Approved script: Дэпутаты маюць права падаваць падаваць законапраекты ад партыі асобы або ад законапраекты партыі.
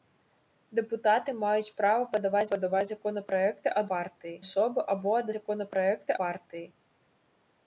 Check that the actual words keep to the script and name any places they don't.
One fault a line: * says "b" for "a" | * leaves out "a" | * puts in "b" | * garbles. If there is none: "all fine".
all fine